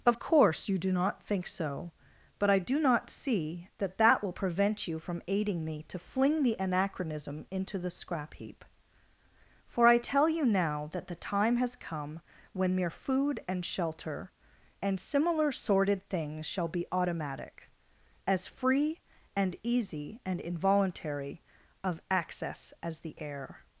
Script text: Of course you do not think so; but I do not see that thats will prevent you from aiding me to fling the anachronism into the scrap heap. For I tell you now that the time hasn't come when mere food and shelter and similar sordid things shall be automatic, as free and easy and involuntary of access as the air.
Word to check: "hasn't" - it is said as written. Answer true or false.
false